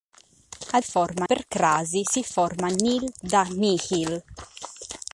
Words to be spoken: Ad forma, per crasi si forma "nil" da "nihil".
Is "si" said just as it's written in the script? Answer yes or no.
yes